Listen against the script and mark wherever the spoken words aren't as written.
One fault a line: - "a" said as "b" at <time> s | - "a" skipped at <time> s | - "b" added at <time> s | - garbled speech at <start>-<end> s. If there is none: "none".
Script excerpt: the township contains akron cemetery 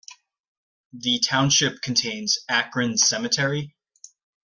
none